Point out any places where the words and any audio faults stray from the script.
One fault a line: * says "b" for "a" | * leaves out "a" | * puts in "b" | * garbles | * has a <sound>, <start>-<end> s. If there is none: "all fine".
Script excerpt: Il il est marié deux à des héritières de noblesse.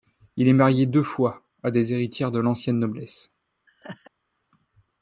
* leaves out "il"
* puts in "fois"
* puts in "l'ancienne"
* has a laugh, 3.7-4.1 s